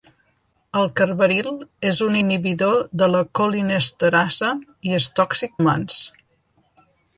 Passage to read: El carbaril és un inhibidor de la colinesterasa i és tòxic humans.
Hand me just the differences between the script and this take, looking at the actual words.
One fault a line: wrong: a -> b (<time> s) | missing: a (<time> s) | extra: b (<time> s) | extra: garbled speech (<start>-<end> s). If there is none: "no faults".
no faults